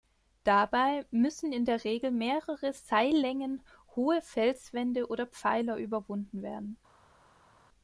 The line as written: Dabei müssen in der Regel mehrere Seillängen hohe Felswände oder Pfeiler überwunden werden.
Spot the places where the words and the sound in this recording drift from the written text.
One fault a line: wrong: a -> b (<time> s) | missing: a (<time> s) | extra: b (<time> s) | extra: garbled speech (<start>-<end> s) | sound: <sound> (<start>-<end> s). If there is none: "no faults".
no faults